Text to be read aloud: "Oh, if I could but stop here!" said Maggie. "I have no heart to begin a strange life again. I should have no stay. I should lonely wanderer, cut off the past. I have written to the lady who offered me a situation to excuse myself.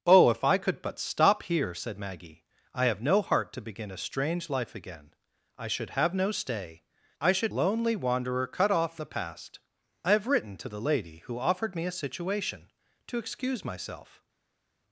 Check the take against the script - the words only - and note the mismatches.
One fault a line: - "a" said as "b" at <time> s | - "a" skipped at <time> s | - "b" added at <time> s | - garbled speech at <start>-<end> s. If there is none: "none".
none